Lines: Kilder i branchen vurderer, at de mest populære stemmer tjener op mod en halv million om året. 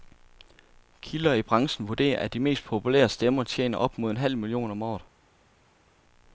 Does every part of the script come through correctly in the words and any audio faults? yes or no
yes